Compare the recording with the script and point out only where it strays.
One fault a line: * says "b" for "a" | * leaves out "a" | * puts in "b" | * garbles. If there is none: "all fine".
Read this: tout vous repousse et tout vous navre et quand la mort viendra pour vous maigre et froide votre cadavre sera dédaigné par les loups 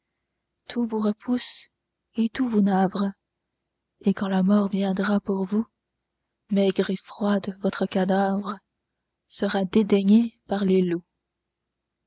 all fine